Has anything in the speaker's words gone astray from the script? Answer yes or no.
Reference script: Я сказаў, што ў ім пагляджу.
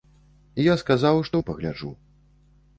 yes